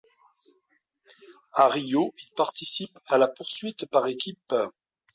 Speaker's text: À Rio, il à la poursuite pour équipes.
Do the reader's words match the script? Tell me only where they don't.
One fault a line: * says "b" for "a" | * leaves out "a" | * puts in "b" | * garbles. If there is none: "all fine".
* puts in "participe"
* says "par" for "pour"